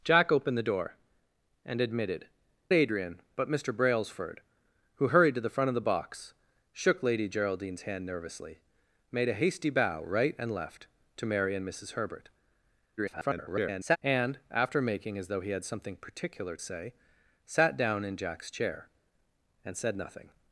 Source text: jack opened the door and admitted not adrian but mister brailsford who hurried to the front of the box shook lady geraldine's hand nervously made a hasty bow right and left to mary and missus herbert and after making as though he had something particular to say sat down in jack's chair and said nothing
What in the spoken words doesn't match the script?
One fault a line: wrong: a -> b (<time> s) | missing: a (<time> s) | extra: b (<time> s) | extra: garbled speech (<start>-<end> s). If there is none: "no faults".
missing: not (2.2 s)
extra: garbled speech (13.0-14.0 s)
missing: to (16.6 s)